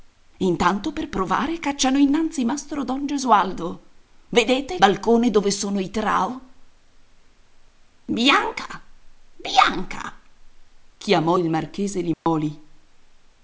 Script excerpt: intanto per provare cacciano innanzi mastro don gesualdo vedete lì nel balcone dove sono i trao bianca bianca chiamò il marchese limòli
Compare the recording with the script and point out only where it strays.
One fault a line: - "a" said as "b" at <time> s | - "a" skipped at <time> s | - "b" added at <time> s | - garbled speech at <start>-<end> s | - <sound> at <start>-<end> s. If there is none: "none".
- "lì nel" skipped at 4.8 s
- dropout at 12.1-12.3 s